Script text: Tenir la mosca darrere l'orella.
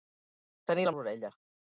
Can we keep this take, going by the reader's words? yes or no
no